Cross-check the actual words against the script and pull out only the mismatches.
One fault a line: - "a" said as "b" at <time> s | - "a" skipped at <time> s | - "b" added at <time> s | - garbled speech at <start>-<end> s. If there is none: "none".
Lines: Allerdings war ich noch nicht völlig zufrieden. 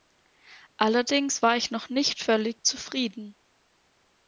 none